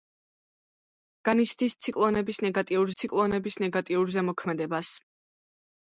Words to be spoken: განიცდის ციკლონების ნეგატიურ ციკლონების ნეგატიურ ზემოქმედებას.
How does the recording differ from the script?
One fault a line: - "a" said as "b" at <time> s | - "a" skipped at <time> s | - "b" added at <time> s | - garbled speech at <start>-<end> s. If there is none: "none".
none